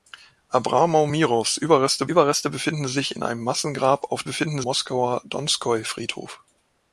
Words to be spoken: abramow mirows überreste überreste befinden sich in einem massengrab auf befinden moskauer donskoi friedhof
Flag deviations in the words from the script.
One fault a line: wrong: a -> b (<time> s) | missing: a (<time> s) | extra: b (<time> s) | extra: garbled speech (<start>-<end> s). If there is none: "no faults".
no faults